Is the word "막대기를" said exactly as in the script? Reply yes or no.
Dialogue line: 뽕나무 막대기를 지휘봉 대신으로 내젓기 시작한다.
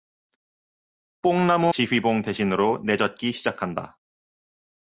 no